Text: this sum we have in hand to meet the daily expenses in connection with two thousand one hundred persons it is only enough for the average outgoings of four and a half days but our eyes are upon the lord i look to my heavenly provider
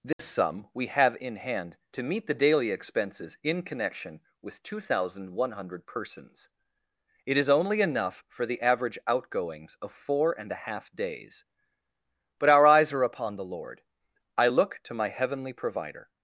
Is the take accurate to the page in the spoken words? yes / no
yes